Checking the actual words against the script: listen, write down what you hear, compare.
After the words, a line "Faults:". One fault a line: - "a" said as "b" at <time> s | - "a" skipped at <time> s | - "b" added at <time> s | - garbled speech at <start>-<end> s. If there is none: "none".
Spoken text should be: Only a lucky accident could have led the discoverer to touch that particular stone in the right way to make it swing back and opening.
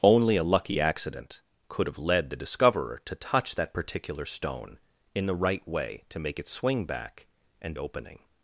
Only a lucky accident could have led the discoverer to touch that particular stone in the right way to make it swing back and opening.
Faults:
none